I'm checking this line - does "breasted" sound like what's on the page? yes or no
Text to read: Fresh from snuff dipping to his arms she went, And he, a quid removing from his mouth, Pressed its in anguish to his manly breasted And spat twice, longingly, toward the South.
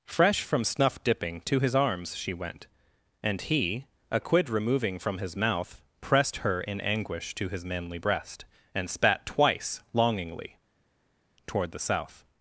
no